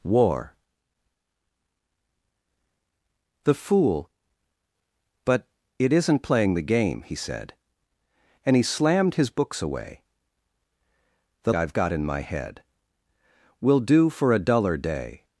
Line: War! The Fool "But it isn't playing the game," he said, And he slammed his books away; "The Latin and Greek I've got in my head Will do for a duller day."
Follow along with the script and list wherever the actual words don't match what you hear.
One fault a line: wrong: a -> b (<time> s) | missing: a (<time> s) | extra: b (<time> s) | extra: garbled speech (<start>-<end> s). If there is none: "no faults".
missing: Latin and Greek (11.5 s)